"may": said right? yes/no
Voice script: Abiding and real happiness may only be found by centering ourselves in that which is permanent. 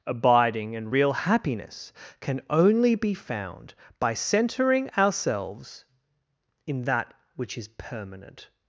no